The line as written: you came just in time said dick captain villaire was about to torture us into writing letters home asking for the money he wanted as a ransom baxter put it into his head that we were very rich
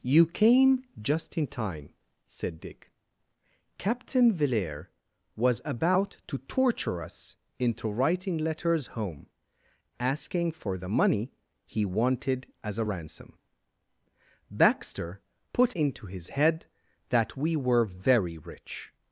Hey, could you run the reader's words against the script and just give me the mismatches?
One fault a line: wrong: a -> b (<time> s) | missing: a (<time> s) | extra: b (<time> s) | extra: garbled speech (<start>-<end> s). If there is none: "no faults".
missing: it (15.8 s)